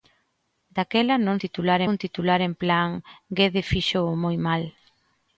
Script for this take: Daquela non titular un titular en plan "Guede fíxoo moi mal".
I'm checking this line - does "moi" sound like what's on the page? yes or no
yes